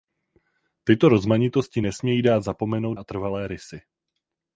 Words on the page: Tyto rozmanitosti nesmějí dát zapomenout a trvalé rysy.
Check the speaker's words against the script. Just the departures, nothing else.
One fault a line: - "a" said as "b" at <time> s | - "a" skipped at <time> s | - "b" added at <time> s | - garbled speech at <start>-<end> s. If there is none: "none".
none